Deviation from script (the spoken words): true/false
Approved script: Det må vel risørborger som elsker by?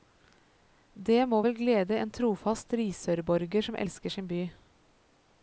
true